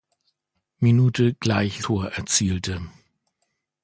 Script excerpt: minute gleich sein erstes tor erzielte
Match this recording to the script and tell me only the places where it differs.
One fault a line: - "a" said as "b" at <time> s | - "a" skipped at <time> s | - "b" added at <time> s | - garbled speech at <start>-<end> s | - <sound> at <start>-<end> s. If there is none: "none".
- "sein erstes" skipped at 1.9 s